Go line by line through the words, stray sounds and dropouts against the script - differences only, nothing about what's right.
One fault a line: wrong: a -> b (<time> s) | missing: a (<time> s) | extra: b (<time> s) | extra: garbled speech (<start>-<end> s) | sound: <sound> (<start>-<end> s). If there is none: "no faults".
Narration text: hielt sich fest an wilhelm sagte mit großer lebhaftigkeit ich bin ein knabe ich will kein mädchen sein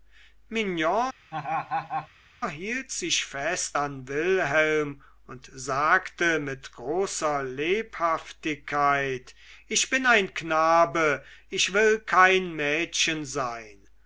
sound: laugh (1.3-2.1 s)
extra: und (5.3 s)